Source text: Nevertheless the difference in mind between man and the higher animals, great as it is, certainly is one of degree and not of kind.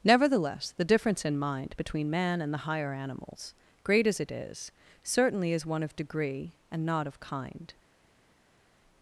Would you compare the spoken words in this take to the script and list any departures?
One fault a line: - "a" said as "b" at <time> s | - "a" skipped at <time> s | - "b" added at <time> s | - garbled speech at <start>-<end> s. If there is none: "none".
none